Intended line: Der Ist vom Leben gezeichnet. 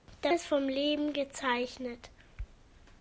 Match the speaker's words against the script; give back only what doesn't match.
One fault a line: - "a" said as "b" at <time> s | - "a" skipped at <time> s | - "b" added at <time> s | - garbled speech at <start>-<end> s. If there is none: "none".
none